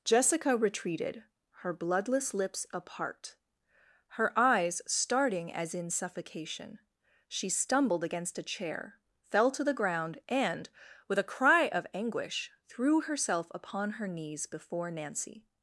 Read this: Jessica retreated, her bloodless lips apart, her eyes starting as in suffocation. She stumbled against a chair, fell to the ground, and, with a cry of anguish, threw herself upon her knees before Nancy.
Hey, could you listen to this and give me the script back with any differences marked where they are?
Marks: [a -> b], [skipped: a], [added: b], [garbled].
Jessica retreated, her bloodless lips apart, her eyes starting as in suffocation. She stumbled against a chair, fell to the ground, and, with a cry of anguish, threw herself upon her knees before Nancy.